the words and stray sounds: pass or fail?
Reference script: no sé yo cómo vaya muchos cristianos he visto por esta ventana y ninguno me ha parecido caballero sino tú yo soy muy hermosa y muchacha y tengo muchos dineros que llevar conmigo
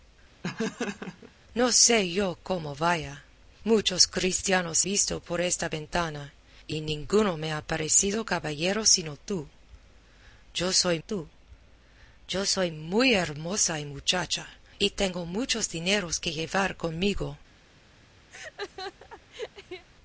fail